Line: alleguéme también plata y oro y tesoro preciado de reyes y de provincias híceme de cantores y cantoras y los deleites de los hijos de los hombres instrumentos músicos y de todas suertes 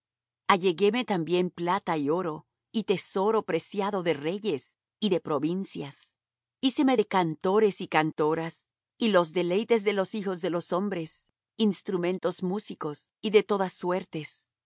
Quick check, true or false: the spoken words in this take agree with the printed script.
true